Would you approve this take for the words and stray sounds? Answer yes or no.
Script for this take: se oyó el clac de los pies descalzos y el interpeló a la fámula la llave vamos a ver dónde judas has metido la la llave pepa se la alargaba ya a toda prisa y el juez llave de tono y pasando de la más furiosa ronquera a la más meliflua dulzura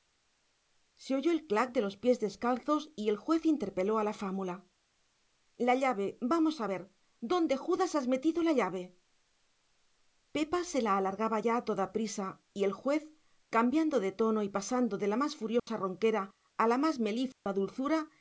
no